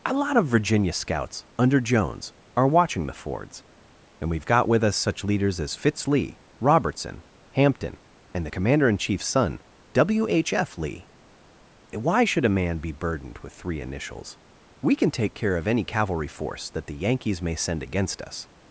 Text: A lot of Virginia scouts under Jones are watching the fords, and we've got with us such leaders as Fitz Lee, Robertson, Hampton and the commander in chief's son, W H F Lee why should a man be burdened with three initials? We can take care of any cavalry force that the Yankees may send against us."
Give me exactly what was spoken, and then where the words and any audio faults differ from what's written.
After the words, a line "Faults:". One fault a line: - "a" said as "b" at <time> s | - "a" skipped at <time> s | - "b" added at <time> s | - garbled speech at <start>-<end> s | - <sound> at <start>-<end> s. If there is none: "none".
A lot of Virginia scouts under Jones are watching the fords, and we've got with us such leaders as Fitz Lee, Robertson, Hampton and the commander in chief's son, W H F Lee why should a man be burdened with three initials? We can take care of any cavalry force that the Yankees may send against us."
Faults:
none